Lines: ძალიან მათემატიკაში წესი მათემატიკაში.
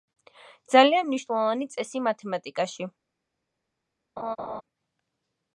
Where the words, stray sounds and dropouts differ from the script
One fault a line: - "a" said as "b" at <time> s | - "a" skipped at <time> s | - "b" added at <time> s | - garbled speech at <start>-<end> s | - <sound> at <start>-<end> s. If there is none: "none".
- "მათემატიკაში" said as "მნიშვნელოვანი" at 1.1 s
- laugh at 4.2-4.6 s